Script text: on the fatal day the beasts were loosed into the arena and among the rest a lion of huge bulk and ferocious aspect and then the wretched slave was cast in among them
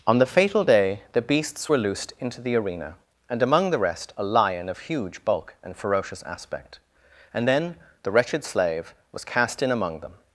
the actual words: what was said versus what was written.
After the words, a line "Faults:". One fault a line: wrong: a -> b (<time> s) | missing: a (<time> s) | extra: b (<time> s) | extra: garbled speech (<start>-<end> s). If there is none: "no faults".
on the fatal day the beasts were loosed into the arena and among the rest a lion of huge bulk and ferocious aspect and then the wretched slave was cast in among them
Faults:
no faults